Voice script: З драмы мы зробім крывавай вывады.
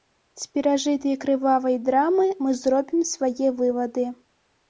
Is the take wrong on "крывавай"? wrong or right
wrong